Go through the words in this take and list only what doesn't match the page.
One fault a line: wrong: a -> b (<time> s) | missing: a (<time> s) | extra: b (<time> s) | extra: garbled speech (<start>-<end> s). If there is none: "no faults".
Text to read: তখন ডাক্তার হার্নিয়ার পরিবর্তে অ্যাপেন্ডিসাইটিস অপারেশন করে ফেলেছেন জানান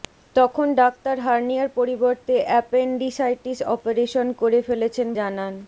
no faults